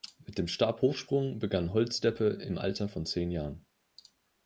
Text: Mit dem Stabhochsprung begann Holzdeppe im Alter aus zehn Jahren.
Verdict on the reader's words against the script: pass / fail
fail